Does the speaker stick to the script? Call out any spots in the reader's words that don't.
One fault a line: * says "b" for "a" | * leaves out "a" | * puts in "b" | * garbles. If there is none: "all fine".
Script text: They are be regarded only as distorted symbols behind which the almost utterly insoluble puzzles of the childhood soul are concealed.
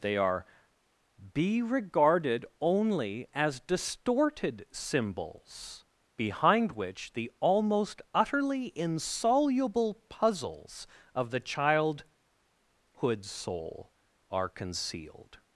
all fine